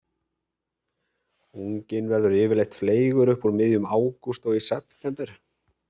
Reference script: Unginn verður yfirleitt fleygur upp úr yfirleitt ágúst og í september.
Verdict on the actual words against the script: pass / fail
fail